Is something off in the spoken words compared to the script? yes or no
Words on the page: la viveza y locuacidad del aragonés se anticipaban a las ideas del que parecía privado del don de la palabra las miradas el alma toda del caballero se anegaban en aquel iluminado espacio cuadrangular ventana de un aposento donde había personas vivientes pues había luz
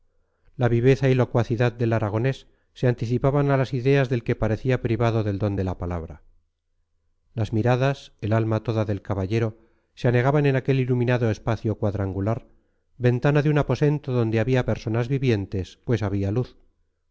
no